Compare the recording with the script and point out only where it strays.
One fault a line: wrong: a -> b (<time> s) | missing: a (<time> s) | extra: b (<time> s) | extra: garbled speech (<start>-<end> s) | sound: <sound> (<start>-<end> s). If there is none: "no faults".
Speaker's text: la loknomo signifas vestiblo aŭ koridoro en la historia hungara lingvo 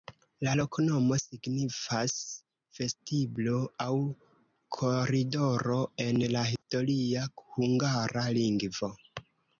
sound: dropout (6.6-6.6 s)